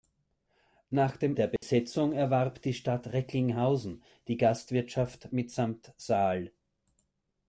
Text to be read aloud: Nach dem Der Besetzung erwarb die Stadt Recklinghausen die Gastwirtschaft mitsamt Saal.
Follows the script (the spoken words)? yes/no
yes